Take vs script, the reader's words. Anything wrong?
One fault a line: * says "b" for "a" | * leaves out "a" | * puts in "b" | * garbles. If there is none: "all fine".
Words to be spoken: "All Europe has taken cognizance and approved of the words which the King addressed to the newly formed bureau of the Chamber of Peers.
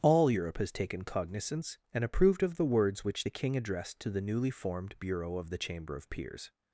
all fine